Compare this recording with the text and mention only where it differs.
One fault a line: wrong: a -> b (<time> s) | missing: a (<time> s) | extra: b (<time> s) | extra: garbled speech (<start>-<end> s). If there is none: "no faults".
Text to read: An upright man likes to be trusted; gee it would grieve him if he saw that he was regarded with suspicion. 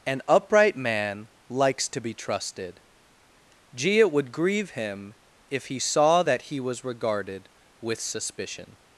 no faults